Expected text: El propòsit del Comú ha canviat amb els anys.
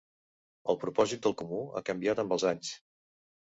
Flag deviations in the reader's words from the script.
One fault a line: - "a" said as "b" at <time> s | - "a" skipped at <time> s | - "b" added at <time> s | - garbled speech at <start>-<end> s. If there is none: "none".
none